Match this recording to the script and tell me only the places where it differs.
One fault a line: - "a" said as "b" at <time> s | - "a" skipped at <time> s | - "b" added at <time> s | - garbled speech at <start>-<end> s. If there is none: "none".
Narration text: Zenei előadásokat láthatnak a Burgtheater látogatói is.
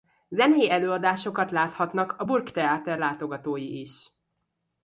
none